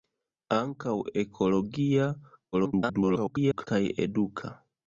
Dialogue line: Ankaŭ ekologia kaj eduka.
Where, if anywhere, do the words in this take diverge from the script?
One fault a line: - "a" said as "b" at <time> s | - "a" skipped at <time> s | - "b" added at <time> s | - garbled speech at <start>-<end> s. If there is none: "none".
- garbled speech at 2.5-3.7 s